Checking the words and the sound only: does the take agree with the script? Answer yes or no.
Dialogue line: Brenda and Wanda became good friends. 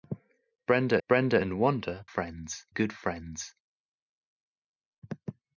no